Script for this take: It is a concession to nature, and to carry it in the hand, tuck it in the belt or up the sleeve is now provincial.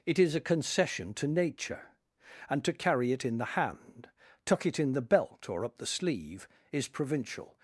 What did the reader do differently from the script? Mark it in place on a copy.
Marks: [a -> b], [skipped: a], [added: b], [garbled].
It is a concession to nature, and to carry it in the hand, tuck it in the belt or up the sleeve is [skipped: now] provincial.